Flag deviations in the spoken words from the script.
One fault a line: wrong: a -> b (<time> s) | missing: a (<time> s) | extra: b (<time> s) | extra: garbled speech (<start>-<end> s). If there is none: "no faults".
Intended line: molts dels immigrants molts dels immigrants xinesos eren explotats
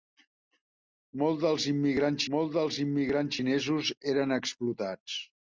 no faults